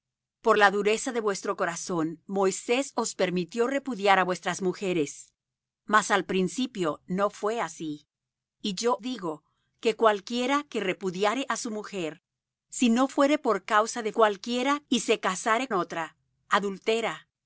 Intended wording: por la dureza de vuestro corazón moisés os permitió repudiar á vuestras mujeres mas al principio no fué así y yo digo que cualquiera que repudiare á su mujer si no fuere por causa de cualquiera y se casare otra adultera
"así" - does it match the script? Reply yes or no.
yes